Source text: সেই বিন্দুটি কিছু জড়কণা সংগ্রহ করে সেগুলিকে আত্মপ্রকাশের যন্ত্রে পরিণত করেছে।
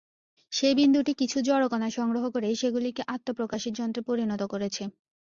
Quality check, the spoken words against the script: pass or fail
pass